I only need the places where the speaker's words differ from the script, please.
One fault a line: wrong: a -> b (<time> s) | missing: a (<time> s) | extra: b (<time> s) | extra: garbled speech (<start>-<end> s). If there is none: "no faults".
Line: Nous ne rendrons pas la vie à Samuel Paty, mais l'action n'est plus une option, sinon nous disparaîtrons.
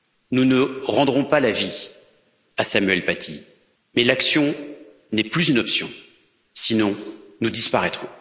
no faults